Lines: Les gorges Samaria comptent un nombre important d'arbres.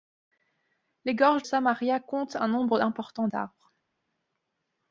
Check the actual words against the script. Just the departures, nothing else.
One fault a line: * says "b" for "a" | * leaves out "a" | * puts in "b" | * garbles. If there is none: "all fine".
all fine